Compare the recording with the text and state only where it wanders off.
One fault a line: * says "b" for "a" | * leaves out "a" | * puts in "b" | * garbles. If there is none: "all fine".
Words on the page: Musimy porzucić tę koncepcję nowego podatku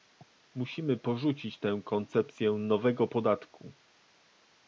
all fine